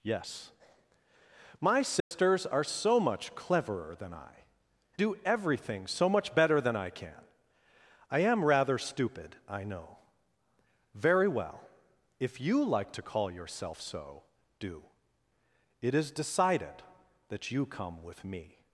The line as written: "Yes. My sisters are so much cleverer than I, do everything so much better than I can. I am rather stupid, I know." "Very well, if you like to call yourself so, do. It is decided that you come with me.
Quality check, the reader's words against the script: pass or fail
pass